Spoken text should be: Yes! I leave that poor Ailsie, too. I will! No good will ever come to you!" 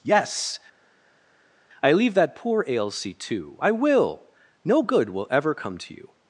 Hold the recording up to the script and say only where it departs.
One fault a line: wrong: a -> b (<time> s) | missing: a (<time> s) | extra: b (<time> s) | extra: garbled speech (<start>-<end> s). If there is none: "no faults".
no faults